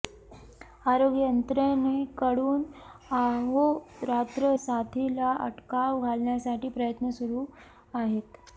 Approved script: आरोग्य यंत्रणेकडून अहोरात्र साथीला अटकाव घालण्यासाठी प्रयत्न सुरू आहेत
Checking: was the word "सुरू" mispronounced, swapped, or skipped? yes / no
no